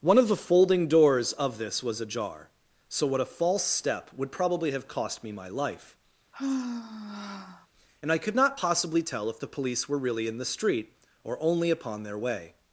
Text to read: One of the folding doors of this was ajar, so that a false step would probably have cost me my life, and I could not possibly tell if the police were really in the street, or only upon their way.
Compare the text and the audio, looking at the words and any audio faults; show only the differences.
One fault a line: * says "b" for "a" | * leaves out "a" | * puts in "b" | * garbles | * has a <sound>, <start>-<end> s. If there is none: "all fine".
* says "what" for "that"
* has a sigh, 6.3-7.7 s